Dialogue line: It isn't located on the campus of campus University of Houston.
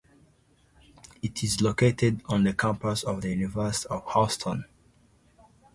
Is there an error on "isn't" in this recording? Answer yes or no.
yes